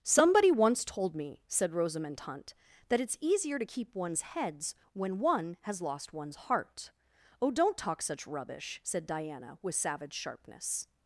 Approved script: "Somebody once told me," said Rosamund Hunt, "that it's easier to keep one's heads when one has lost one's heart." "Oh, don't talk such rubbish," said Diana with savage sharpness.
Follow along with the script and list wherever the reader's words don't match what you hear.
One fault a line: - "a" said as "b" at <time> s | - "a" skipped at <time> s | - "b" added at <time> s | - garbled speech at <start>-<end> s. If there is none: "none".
none